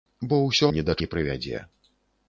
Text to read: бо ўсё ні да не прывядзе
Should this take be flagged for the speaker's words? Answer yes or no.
no